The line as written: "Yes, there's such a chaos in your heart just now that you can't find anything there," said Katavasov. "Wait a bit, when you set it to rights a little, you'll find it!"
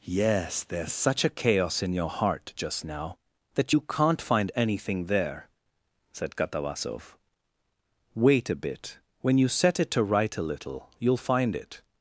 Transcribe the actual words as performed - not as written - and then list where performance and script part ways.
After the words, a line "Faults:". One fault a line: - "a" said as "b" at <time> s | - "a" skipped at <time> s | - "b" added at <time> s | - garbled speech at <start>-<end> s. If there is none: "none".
"Yes, there's such a chaos in your heart just now that you can't find anything there," said Katavasov. "Wait a bit, when you set it to right a little, you'll find it!"
Faults:
- "rights" said as "right" at 10.0 s